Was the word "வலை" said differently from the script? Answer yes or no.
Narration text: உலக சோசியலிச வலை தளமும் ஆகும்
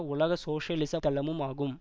yes